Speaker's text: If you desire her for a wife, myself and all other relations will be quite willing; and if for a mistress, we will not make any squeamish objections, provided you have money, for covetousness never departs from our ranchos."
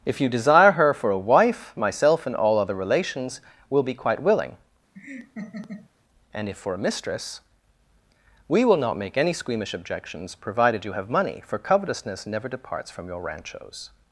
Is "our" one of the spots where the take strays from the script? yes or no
yes